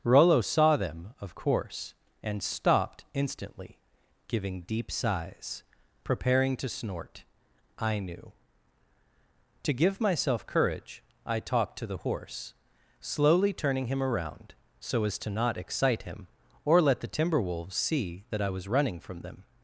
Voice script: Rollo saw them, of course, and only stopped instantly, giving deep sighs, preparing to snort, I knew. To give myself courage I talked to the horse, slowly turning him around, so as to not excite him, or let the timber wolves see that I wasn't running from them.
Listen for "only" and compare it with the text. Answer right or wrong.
wrong